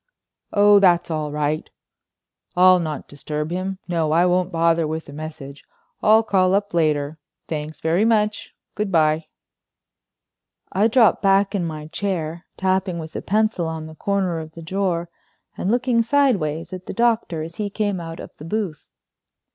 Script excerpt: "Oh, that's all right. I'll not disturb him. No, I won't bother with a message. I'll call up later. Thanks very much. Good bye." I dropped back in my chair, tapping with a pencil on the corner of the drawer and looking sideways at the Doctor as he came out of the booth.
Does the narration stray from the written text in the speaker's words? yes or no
no